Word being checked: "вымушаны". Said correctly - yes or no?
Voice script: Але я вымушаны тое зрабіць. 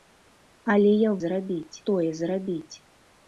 no